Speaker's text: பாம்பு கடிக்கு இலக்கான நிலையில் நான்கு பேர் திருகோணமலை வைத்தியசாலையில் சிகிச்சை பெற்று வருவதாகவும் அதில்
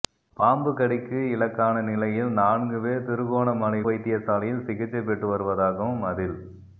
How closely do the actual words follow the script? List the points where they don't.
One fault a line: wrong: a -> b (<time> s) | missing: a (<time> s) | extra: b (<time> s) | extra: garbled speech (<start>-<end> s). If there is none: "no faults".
no faults